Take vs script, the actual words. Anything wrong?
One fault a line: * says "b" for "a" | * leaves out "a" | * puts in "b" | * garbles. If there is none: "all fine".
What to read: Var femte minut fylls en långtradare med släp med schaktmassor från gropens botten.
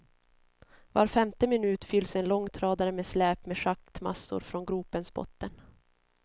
all fine